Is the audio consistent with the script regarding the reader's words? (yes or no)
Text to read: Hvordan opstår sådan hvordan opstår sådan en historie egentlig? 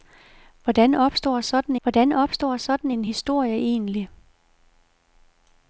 yes